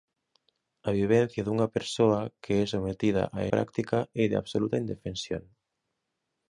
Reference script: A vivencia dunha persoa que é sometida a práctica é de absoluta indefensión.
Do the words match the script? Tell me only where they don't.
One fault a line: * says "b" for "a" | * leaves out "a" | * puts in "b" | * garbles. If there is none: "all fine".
all fine